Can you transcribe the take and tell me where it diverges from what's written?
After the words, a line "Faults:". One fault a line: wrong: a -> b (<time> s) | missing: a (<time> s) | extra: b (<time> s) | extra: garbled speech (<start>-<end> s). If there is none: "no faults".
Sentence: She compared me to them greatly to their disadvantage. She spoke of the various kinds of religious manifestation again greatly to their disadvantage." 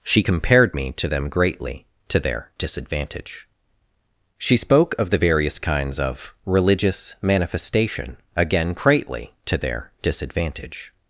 She compared me to them greatly to their disadvantage. She spoke of the various kinds of religious manifestation again greatly to their disadvantage."
Faults:
no faults